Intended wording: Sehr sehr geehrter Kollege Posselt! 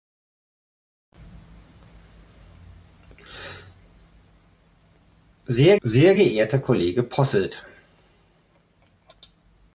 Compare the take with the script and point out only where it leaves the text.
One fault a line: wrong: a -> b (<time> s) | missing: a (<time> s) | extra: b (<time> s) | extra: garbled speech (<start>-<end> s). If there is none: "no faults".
no faults